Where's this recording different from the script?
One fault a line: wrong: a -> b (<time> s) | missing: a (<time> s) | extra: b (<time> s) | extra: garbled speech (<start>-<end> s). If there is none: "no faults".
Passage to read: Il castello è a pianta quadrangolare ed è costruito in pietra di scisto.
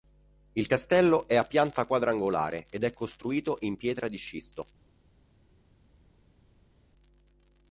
no faults